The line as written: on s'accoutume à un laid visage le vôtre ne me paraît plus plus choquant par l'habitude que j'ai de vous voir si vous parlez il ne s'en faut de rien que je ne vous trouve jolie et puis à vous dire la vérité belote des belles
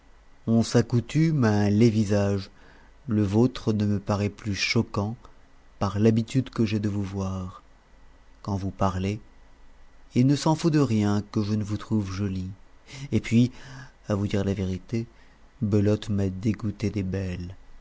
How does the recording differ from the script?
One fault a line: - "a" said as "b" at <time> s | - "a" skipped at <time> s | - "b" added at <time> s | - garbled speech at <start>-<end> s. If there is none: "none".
- "plus" skipped at 4.5 s
- "si" said as "quand" at 8.4 s
- "m'a dégoûté" added at 16.1 s